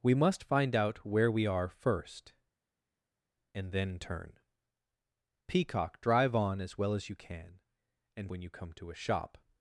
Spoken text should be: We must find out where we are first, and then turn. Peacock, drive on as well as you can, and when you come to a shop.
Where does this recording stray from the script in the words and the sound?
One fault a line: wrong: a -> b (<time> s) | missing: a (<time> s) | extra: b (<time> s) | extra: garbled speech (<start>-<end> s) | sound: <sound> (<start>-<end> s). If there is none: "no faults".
no faults